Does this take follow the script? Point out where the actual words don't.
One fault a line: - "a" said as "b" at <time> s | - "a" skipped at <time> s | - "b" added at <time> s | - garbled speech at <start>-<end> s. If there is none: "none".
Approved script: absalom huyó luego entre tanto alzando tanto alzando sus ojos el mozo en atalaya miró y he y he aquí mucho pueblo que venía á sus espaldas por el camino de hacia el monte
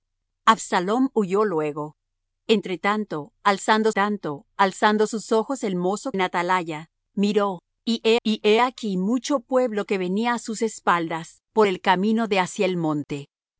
none